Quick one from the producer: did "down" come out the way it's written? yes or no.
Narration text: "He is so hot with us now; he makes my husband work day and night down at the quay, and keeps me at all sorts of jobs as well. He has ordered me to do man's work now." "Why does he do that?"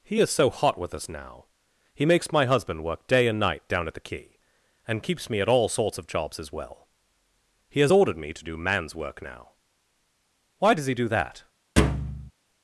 yes